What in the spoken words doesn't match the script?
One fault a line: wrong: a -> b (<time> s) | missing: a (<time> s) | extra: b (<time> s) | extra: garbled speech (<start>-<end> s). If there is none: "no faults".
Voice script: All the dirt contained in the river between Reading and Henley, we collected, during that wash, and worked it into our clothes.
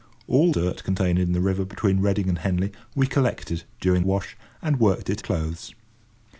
missing: the (0.5 s)
missing: that (4.0 s)
missing: into our (5.2 s)